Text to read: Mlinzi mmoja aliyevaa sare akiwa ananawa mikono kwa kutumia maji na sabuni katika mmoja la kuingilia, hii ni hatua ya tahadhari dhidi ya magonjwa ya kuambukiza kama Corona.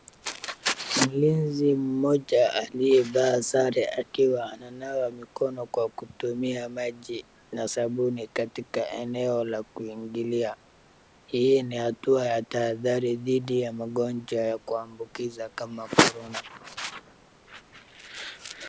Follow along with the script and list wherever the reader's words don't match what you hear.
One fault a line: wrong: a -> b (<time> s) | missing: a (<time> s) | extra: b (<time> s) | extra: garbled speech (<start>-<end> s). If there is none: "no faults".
wrong: mmoja -> eneo (8.9 s)